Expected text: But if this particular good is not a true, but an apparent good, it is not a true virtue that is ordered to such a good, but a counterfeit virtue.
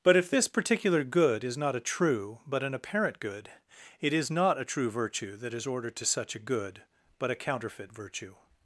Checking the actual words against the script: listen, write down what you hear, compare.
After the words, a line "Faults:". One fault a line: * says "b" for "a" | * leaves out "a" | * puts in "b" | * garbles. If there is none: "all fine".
But if this particular good is not a true, but an apparent good, it is not a true virtue that is ordered to such a good, but a counterfeit virtue.
Faults:
all fine